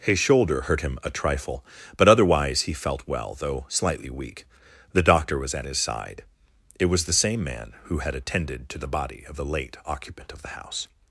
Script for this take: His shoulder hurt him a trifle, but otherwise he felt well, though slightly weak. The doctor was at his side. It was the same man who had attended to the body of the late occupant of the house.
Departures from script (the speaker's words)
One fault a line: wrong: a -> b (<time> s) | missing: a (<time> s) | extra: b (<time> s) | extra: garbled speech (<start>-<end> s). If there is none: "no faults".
no faults